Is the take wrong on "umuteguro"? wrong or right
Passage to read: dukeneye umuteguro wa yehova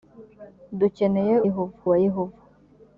wrong